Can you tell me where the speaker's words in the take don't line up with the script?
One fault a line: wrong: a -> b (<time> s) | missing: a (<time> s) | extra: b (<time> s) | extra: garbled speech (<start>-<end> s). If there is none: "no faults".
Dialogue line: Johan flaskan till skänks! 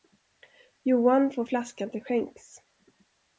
extra: får (1.3 s)